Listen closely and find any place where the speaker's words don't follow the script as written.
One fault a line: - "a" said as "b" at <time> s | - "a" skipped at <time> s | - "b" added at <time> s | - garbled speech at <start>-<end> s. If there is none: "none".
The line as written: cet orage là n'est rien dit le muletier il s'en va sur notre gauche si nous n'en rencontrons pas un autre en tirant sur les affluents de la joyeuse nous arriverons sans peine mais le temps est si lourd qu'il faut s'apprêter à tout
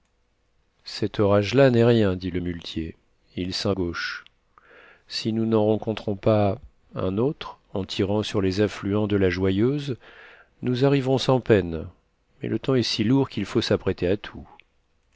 - "va sur notre" skipped at 3.7 s